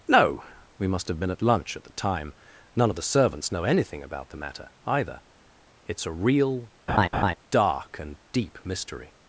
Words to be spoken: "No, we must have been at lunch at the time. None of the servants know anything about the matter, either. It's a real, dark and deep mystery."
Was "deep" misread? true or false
false